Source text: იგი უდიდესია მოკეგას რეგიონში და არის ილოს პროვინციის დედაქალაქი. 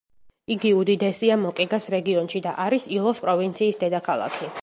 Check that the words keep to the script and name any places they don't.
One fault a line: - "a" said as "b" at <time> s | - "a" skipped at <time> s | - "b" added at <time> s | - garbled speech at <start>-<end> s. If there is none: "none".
none